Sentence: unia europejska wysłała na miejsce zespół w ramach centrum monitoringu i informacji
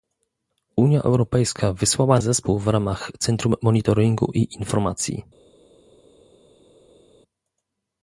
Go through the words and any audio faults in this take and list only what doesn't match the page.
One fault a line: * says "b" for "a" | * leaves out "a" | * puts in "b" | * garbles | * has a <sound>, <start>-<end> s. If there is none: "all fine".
* leaves out "na miejsce"